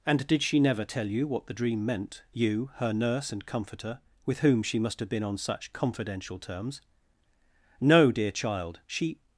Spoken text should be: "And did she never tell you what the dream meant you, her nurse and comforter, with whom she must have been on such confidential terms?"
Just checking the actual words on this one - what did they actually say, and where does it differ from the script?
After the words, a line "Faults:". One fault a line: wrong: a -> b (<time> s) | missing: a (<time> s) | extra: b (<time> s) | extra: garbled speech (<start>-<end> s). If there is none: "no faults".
"And did she never tell you what the dream meant you, her nurse and comforter, with whom she must have been on such confidential terms?" "No, dear child. She
Faults:
extra: No dear child She (7.8 s)